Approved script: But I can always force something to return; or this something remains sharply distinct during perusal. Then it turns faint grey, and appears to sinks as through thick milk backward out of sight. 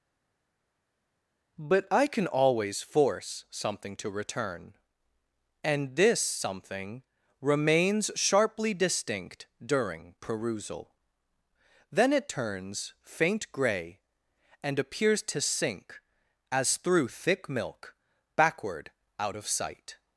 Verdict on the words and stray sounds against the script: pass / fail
fail